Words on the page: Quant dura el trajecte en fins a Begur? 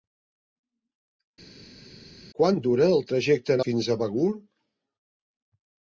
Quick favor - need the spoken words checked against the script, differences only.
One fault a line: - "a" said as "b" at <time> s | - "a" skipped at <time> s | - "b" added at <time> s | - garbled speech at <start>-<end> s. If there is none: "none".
none